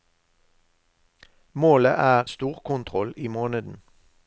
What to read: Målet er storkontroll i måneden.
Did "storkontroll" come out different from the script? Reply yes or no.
no